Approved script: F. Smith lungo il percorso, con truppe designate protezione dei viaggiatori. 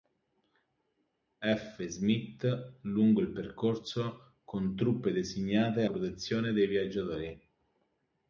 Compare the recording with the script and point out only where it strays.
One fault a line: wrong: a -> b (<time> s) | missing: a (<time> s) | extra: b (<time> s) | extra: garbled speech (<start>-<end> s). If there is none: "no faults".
no faults